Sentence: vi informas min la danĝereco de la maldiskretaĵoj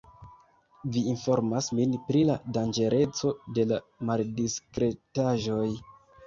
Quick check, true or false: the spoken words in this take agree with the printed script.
false